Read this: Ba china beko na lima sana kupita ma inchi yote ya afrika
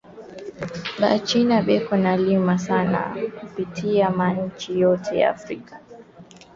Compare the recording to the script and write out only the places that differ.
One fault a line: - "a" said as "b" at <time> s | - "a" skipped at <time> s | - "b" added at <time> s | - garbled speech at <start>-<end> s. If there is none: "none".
none